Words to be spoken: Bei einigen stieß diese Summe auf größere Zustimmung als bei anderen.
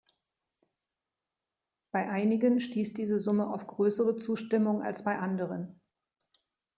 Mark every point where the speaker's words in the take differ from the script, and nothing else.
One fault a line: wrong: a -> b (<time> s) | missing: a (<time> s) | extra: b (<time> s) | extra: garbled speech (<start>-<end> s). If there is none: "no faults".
no faults